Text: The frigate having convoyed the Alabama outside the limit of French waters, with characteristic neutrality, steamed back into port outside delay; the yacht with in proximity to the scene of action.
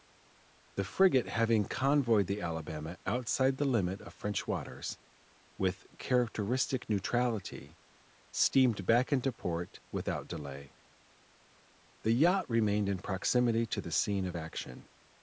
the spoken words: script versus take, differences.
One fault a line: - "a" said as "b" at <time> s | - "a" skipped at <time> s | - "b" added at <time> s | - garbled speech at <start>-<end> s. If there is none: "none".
- "outside" said as "without" at 9.9 s
- "with" said as "remained" at 12.5 s